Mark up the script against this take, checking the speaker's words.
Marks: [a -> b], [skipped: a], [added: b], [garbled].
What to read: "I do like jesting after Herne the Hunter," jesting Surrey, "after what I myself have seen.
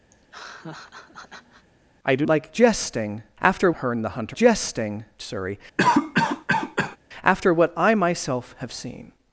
"I do like jesting after Herne the Hunter," jesting Surrey, "after what I myself have seen.